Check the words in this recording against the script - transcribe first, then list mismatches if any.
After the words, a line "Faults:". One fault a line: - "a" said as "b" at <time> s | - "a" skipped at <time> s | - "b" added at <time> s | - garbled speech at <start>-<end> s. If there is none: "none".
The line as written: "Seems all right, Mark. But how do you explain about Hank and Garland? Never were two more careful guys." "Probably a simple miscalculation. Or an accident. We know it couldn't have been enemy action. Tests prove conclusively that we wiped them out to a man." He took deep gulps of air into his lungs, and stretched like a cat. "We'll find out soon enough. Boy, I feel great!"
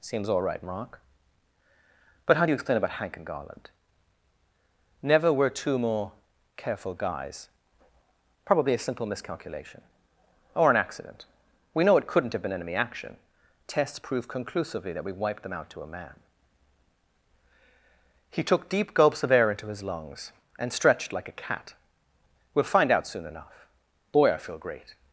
"Seems all right, Mark. But how do you explain about Hank and Garland? Never were two more careful guys." "Probably a simple miscalculation. Or an accident. We know it couldn't have been enemy action. Tests prove conclusively that we wiped them out to a man." He took deep gulps of air into his lungs, and stretched like a cat. "We'll find out soon enough. Boy, I feel great!"
Faults:
none